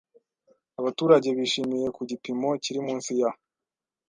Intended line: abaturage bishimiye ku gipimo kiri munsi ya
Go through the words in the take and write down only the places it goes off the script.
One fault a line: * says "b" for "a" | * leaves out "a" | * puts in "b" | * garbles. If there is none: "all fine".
all fine